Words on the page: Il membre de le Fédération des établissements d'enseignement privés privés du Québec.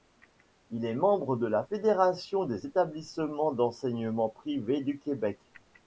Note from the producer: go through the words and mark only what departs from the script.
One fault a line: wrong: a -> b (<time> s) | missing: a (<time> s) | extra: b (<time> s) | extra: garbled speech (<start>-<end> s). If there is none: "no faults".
extra: est (0.8 s)
wrong: le -> la (1.4 s)
missing: privés (4.8 s)